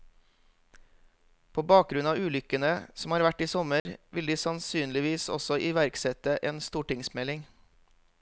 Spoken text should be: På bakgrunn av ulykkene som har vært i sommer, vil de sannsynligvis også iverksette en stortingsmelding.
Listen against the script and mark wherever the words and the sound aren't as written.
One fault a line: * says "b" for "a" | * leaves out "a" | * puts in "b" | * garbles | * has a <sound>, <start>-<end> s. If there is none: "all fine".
* has a dropout, 3.8-3.9 s